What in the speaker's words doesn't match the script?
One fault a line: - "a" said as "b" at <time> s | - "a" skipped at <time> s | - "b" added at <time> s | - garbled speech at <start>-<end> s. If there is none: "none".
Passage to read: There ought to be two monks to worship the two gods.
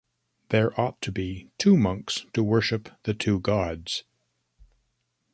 none